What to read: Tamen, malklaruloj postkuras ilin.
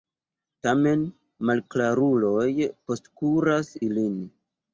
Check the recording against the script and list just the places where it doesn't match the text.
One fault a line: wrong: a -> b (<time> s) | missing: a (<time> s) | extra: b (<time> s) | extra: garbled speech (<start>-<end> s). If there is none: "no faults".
no faults